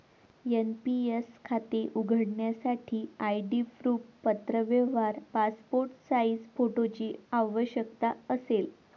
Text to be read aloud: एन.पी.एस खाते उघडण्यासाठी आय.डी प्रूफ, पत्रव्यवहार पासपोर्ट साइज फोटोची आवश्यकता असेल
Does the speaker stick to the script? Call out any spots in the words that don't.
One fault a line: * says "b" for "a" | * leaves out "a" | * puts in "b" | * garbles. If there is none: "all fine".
all fine